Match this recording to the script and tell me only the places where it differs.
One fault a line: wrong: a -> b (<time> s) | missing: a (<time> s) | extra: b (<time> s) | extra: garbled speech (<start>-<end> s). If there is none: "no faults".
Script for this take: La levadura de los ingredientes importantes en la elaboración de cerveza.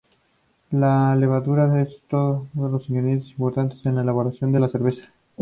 extra: es otro (1.8 s)
extra: la (4.6 s)